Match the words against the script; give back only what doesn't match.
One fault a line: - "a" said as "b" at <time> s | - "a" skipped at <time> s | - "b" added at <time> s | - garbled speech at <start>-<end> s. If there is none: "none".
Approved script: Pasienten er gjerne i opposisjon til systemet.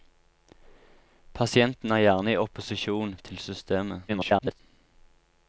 - garbled speech at 4.1-4.6 s